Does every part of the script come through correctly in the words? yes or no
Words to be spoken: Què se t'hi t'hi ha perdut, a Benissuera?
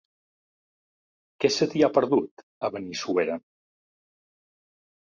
no